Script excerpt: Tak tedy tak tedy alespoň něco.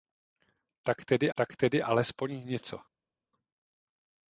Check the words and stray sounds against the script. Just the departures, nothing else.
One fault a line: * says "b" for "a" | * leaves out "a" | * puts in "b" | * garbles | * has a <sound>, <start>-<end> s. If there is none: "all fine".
all fine